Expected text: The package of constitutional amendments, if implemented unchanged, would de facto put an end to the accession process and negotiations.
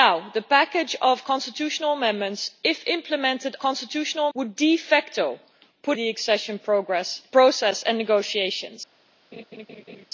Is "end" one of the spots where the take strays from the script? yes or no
yes